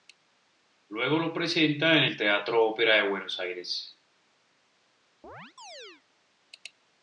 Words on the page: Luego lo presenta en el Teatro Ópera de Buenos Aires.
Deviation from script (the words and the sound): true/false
true